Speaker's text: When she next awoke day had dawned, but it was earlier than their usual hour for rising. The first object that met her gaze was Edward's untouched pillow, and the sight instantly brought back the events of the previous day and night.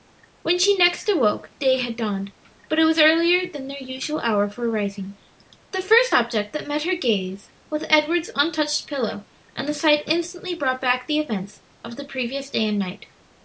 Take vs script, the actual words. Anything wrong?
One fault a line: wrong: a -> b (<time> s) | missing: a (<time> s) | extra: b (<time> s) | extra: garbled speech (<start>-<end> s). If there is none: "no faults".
no faults